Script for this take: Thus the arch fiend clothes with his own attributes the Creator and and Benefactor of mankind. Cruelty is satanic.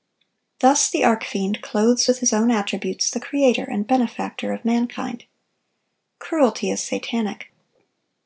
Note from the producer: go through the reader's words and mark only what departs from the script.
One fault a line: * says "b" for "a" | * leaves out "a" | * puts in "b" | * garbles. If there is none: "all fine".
* leaves out "and"